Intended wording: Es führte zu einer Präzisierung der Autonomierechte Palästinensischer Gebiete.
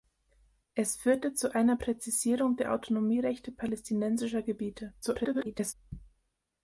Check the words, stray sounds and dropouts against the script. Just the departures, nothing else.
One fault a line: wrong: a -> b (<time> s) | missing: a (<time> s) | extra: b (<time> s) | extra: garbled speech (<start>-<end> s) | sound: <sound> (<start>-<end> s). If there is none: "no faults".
extra: garbled speech (5.0-5.7 s)